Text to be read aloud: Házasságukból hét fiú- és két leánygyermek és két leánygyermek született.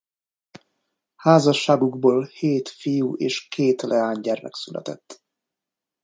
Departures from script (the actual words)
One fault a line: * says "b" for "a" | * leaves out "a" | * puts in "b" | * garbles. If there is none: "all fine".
* leaves out "és két leánygyermek"